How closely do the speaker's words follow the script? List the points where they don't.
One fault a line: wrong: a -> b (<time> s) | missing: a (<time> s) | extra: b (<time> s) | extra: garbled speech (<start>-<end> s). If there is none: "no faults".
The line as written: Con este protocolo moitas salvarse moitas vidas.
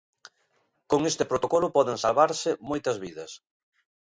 wrong: moitas -> poden (1.7 s)